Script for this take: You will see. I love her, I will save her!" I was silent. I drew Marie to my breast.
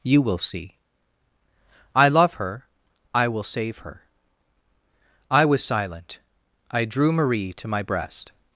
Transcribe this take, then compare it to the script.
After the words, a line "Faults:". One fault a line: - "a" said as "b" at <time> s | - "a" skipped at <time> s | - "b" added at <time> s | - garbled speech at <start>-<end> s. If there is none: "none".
You will see. I love her, I will save her!" I was silent. I drew Marie to my breast.
Faults:
none